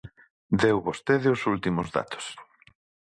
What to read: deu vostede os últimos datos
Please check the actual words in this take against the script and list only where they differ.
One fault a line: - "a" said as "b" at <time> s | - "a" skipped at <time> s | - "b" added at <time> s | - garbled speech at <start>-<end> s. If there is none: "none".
none